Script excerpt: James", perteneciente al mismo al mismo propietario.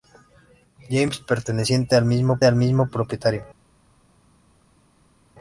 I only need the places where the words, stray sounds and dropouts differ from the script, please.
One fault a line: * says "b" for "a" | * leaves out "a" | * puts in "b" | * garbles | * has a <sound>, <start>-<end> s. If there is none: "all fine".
all fine